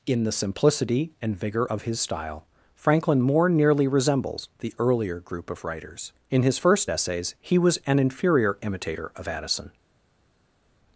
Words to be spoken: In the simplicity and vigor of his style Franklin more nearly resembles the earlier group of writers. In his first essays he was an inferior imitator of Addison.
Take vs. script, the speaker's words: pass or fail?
pass